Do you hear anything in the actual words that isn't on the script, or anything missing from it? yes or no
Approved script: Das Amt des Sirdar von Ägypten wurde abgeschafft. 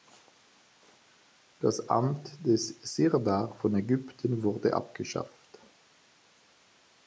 no